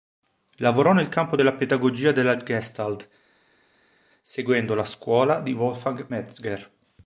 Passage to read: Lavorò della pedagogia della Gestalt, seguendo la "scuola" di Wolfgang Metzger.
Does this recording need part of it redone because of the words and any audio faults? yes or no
yes